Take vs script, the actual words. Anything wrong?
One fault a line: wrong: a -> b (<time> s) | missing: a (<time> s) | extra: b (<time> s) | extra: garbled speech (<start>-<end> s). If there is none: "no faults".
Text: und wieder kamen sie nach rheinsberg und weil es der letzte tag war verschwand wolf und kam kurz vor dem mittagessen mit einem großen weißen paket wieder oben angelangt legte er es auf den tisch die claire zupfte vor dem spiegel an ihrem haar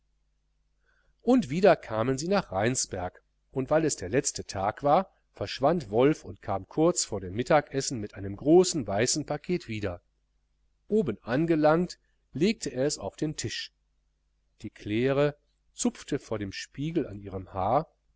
no faults